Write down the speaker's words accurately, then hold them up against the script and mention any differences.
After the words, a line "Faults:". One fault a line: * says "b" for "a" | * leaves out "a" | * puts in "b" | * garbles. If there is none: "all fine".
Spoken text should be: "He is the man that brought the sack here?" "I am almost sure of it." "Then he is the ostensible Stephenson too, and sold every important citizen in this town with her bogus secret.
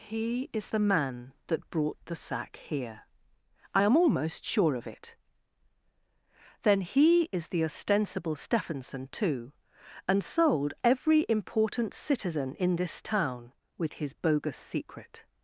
"He is the man that brought the sack here?" "I am almost sure of it." "Then he is the ostensible Stephenson too, and sold every important citizen in this town with his bogus secret.
Faults:
* says "his" for "her"